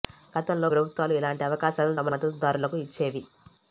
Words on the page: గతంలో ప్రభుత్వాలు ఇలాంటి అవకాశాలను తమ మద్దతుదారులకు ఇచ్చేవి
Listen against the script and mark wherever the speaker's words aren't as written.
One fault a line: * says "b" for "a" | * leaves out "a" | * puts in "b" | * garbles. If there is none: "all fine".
all fine